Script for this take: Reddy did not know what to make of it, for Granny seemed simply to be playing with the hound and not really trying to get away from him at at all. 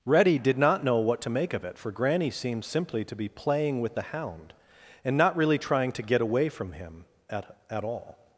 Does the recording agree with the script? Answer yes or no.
yes